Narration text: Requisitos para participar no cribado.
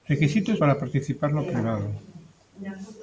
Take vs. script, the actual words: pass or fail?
pass